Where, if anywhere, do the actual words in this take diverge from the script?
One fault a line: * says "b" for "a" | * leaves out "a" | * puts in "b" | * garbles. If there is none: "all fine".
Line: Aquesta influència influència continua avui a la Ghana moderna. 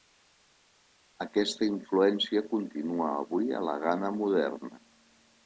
* leaves out "influència"